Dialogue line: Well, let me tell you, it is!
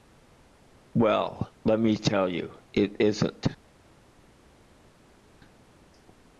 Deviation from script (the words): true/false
true